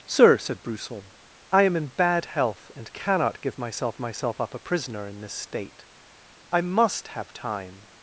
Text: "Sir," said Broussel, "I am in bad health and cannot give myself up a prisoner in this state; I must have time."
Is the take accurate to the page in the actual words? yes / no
no